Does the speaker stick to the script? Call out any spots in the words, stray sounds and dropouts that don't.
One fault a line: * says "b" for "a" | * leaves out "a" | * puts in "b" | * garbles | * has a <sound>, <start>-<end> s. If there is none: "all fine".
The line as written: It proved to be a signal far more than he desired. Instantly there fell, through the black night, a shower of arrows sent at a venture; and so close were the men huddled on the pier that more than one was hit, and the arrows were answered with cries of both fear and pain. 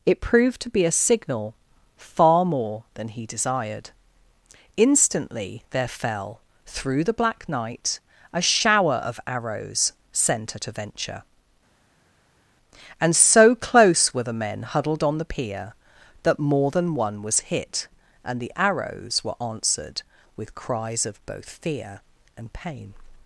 all fine